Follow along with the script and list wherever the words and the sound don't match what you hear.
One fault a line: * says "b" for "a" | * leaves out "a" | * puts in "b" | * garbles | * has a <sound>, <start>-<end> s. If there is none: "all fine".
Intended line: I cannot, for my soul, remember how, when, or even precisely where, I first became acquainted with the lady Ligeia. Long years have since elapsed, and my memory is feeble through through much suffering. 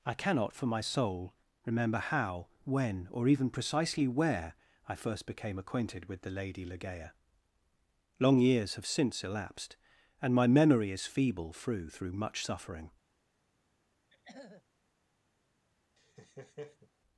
* has a throat clearing, 14.1-14.6 s
* has a laugh, 16.0-16.9 s